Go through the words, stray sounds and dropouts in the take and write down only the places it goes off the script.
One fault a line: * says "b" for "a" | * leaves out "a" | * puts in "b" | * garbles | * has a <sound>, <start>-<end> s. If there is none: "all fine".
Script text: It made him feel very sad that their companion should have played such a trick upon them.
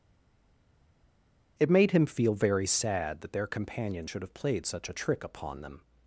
all fine